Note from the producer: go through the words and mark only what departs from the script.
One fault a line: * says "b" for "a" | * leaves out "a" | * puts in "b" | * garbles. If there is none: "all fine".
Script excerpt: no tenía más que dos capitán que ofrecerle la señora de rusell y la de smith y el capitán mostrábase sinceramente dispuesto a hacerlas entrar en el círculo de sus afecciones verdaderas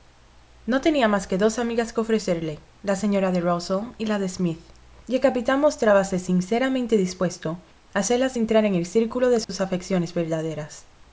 * says "amigas" for "capitán"